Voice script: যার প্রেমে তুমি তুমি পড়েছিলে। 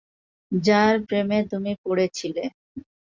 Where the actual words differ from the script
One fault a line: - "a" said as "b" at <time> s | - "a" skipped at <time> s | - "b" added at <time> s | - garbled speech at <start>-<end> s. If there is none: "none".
- "তুমি" skipped at 1.7 s